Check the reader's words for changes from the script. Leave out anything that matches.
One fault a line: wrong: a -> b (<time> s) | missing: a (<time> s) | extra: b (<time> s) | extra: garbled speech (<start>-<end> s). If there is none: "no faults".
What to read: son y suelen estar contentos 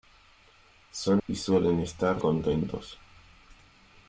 no faults